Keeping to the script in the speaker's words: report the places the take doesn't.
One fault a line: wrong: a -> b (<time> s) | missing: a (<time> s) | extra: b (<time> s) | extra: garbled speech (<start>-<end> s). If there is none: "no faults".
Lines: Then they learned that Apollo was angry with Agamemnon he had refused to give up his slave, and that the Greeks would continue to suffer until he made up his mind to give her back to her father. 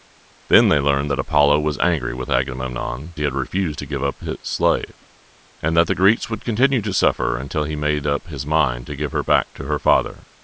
no faults